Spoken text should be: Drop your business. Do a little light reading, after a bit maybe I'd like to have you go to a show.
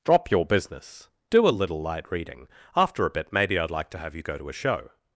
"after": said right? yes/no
yes